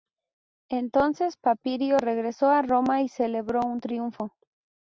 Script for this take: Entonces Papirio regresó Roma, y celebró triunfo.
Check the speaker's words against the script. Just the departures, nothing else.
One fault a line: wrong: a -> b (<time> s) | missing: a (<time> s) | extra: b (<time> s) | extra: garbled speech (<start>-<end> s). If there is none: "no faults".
extra: a (2.5 s)
extra: un (3.7 s)